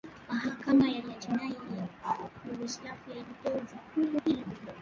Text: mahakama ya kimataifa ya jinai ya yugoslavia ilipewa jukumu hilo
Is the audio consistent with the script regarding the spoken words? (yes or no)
no